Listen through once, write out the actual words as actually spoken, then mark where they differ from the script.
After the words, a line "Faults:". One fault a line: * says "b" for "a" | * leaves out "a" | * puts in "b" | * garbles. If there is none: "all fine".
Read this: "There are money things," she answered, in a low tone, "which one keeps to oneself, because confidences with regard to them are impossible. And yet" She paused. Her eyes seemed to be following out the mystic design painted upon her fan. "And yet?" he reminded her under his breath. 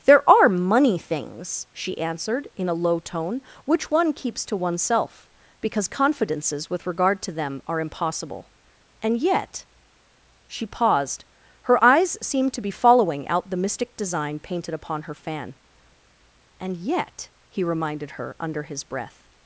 "There are money things," she answered, in a low tone, "which one keeps to oneself, because confidences with regard to them are impossible. And yet" She paused. Her eyes seemed to be following out the mystic design painted upon her fan. "And yet?" he reminded her under his breath.
Faults:
all fine